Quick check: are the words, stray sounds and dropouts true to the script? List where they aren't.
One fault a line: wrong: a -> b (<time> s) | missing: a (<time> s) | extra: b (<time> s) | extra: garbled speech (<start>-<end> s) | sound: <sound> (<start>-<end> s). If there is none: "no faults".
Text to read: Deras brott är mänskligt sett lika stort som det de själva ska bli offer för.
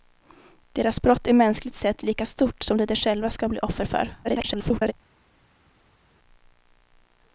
extra: garbled speech (4.2-4.9 s)